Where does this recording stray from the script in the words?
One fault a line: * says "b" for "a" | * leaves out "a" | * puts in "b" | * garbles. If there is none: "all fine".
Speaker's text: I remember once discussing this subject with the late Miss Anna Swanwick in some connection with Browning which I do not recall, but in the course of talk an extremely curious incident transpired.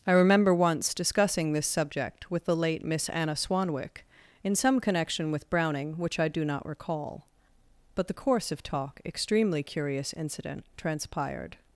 * leaves out "in"
* leaves out "an"